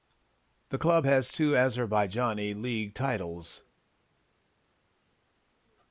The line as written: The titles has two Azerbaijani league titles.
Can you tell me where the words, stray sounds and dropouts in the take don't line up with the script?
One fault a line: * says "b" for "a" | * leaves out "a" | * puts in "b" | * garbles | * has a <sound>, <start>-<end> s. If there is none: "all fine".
* says "club" for "titles"